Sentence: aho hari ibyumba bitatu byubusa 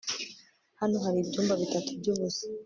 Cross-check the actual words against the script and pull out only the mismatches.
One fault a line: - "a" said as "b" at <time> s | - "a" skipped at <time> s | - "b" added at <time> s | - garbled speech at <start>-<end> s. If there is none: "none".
- "aho" said as "hano" at 0.8 s